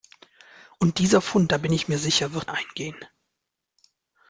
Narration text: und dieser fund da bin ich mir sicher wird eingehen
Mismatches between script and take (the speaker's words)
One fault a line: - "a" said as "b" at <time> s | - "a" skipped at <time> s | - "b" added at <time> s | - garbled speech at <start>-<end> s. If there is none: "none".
none